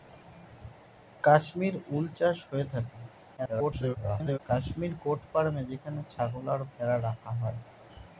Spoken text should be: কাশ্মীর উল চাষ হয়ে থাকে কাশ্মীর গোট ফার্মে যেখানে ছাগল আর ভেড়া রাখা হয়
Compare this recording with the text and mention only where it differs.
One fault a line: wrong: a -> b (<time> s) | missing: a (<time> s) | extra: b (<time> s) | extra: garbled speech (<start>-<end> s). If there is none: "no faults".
extra: garbled speech (3.4-4.4 s)